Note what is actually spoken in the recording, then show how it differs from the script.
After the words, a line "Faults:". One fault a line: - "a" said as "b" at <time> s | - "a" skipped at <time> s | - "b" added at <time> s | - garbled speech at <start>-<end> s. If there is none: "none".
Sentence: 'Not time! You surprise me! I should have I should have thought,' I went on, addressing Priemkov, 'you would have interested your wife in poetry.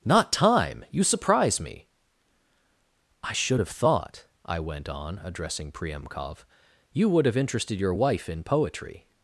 'Not time! You surprise me! I should have thought,' I went on, addressing Priemkov, 'you would have interested your wife in poetry.
Faults:
- "I should have" skipped at 3.7 s